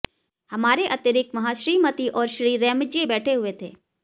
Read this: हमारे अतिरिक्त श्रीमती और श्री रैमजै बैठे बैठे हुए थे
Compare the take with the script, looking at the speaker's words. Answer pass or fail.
fail